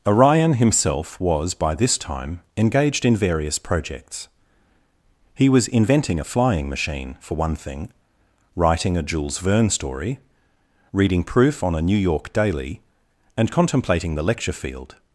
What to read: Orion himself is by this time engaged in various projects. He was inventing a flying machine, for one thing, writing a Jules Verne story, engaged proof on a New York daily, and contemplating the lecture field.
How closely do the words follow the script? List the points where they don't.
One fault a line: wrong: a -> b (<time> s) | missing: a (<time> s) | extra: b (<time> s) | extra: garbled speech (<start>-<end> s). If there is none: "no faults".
wrong: is -> was (1.2 s)
wrong: engaged -> reading (10.9 s)